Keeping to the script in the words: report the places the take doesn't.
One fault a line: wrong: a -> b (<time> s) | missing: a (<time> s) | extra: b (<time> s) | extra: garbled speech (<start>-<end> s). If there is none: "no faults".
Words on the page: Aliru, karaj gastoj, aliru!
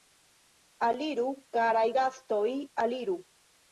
no faults